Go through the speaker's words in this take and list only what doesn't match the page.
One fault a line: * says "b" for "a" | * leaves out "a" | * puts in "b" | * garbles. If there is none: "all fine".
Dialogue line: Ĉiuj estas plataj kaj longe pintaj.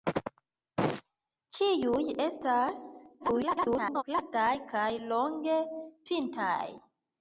* garbles